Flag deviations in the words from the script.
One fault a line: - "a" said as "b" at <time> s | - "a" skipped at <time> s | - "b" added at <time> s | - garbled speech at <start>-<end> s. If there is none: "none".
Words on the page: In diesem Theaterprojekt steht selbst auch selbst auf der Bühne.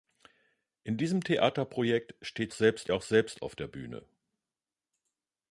none